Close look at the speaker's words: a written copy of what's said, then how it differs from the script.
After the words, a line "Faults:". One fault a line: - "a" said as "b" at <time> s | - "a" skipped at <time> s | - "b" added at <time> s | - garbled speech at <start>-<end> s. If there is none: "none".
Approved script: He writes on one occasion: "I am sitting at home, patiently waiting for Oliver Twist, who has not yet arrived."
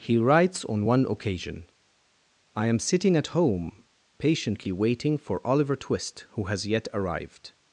He writes on one occasion: "I am sitting at home, patiently waiting for Oliver Twist, who has yet arrived."
Faults:
- "not" skipped at 6.6 s